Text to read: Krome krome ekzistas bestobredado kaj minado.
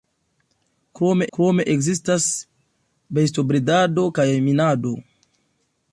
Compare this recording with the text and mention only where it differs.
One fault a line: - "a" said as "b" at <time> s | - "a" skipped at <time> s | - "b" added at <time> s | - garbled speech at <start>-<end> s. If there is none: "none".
none